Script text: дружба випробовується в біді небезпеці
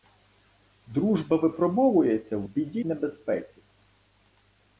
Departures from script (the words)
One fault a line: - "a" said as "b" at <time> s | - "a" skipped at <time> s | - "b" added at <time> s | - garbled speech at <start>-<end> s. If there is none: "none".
none